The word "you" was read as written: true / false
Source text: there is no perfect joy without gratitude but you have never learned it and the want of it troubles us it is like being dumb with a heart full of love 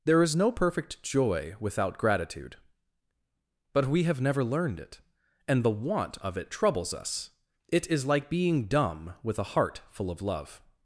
false